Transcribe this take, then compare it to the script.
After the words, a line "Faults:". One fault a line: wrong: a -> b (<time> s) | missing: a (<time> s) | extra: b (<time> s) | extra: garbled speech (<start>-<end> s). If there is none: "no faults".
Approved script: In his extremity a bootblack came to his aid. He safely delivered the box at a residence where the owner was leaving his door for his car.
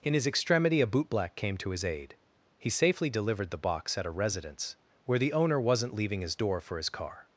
In his extremity a bootblack came to his aid. He safely delivered the box at a residence where the owner wasn't leaving his door for his car.
Faults:
wrong: was -> wasn't (5.6 s)